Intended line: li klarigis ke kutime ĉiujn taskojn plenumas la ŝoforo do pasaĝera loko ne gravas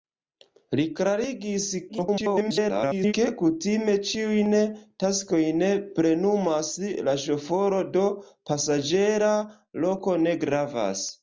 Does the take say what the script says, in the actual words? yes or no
no